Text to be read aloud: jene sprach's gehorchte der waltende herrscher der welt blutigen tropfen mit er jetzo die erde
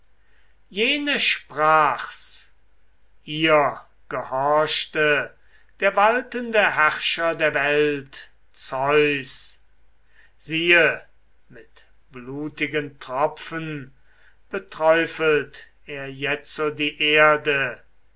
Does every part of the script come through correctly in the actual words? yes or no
no